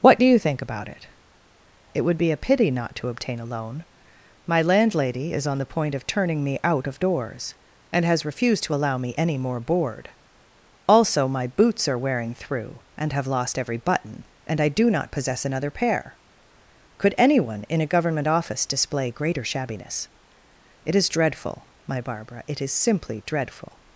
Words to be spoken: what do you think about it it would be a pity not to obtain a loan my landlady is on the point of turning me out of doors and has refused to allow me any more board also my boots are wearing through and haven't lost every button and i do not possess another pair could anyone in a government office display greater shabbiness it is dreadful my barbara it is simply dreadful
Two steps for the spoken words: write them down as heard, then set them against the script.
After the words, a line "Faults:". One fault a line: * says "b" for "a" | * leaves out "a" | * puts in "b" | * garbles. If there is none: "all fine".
what do you think about it it would be a pity not to obtain a loan my landlady is on the point of turning me out of doors and has refused to allow me any more board also my boots are wearing through and have lost every button and i do not possess another pair could anyone in a government office display greater shabbiness it is dreadful my barbara it is simply dreadful
Faults:
* says "have" for "haven't"